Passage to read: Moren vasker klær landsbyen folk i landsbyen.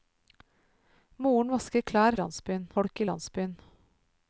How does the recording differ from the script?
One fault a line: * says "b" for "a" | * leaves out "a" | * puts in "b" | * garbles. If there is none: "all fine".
all fine